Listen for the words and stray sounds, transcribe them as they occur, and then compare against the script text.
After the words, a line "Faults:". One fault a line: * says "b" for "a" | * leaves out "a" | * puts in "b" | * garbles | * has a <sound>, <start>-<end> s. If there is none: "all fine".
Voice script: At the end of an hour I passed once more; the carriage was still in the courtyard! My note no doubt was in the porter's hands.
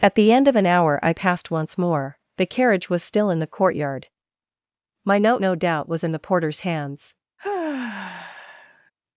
At the end of an hour I passed once more; the carriage was still in the courtyard! My note no doubt was in the porter's hands.
Faults:
* has a sigh, 7.4-8.9 s